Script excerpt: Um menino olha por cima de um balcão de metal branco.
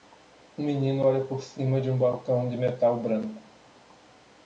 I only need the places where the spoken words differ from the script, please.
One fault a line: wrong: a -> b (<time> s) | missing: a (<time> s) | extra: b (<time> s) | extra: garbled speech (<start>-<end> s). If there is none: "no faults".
no faults